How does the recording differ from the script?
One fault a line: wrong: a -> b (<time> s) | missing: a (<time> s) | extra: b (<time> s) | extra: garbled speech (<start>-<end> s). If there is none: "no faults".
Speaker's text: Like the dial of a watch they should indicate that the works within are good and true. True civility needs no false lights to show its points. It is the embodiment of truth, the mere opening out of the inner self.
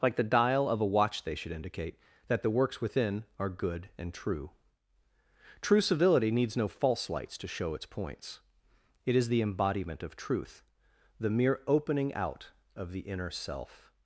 no faults